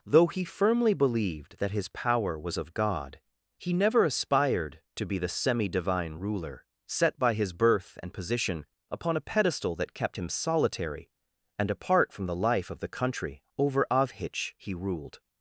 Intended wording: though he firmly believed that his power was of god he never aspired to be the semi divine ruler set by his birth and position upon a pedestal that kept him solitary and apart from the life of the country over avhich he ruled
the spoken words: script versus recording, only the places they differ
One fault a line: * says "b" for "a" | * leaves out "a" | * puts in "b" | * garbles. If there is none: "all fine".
all fine